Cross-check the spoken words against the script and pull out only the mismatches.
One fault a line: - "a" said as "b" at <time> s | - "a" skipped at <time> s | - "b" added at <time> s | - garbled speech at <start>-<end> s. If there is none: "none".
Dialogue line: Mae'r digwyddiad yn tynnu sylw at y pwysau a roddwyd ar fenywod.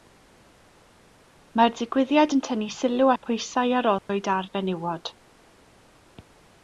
- "at" skipped at 3.1 s